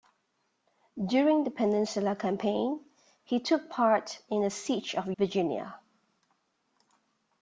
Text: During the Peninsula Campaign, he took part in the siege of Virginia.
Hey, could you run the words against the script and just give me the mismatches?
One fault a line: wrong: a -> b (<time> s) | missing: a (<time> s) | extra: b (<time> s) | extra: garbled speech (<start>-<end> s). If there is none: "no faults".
no faults